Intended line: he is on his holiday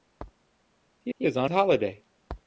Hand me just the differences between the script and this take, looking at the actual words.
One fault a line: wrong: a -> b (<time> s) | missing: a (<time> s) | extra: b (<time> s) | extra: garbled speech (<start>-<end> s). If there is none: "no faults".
extra: he (1.1 s)
missing: his (1.5 s)